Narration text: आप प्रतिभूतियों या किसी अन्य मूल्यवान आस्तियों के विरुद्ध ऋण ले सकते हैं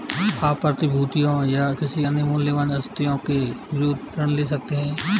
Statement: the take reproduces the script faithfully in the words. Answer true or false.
true